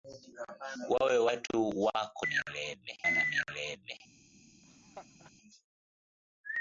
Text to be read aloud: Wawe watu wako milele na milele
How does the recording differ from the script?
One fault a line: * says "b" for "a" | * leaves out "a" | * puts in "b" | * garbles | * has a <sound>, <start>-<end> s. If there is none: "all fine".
* has a dropout, 1.5-1.5 s
* has a laugh, 4.6-5.3 s